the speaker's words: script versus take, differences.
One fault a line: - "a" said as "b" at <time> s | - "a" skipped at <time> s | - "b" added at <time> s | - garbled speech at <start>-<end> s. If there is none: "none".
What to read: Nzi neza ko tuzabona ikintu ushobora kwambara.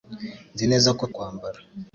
- "tuzabona ikintu ushobora" skipped at 1.0 s